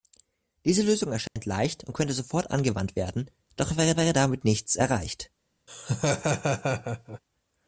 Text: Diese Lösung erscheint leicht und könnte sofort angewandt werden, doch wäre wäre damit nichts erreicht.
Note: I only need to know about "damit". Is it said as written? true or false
true